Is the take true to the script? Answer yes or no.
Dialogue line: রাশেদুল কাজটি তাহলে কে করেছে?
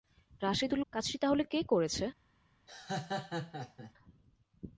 yes